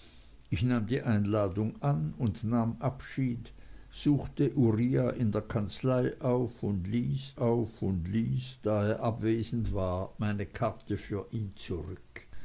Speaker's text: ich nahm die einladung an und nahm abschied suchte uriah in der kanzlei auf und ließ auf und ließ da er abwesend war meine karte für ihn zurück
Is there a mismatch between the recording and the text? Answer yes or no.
no